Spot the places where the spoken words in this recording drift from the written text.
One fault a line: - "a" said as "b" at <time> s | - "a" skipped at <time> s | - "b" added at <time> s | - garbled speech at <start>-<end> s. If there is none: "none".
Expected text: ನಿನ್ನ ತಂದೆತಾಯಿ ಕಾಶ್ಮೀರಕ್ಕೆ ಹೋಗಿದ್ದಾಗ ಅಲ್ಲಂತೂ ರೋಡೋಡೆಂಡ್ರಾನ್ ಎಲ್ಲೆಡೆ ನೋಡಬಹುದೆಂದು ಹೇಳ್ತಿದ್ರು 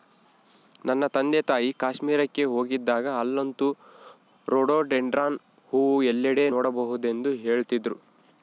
- "ನಿನ್ನ" said as "ನನ್ನ" at 0.8 s
- "ಹೂವು" added at 5.7 s